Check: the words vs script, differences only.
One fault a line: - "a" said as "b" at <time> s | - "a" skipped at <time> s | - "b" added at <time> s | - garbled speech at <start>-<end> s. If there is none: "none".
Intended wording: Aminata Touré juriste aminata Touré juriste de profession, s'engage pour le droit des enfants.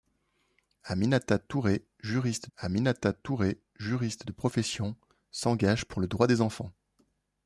none